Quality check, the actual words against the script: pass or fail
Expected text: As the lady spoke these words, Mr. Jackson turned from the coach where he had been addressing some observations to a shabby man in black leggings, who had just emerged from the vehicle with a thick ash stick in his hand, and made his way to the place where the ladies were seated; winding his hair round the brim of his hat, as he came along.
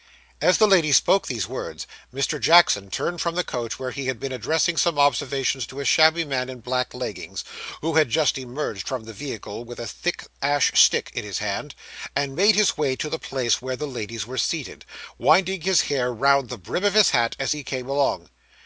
pass